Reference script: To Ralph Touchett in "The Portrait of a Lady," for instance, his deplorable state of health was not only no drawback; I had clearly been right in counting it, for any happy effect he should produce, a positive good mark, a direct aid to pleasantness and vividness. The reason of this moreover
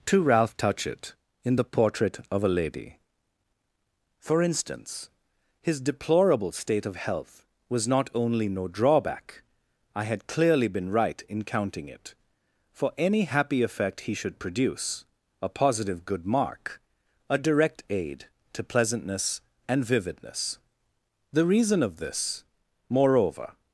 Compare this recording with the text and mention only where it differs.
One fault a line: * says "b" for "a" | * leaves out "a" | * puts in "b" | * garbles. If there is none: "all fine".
all fine